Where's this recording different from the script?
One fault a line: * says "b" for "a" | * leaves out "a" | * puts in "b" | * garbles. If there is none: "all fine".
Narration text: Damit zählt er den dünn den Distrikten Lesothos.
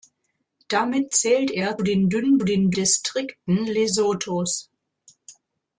all fine